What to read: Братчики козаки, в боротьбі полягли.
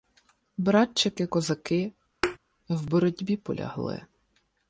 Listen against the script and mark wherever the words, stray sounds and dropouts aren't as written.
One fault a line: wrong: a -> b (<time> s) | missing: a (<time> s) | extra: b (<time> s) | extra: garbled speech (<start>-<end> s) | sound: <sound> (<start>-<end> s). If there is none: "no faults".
sound: thud (2.2-2.4 s)